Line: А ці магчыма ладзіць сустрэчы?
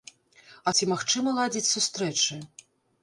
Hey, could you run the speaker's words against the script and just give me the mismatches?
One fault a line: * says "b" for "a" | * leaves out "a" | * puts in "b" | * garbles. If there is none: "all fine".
all fine